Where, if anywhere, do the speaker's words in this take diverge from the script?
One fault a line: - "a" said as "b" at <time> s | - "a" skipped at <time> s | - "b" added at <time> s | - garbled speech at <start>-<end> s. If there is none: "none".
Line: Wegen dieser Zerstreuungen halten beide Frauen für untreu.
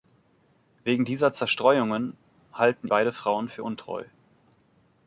none